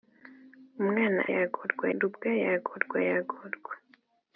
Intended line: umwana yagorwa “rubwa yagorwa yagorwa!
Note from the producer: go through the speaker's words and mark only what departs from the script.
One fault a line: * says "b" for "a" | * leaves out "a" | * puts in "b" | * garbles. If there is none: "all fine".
all fine